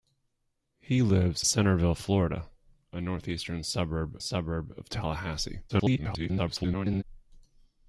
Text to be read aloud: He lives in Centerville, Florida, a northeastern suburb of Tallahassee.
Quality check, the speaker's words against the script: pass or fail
fail